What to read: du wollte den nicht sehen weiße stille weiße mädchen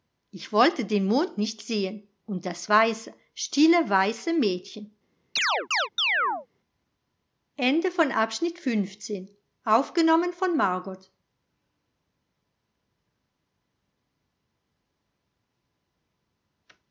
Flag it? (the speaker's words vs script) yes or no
yes